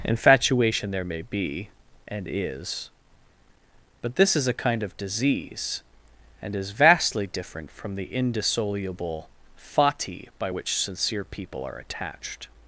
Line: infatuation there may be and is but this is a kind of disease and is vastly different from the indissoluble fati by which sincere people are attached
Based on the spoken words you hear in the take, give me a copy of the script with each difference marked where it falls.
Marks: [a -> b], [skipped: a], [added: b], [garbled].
infatuation there may be and is but this is a kind of disease and is vastly different from the indissoluble fati by which sincere people are attached